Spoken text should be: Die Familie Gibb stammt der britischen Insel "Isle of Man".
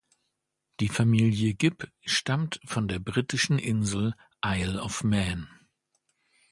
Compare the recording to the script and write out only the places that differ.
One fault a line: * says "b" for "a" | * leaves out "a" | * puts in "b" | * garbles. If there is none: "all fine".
* puts in "von"